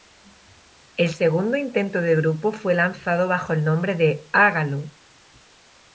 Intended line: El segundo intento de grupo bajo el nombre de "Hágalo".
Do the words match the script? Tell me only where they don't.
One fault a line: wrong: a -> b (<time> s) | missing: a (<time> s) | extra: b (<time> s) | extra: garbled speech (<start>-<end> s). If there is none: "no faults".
extra: fue lanzado (2.5 s)